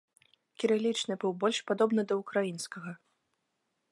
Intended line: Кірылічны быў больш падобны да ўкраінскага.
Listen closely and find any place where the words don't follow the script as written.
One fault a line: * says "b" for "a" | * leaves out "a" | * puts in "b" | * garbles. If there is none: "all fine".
all fine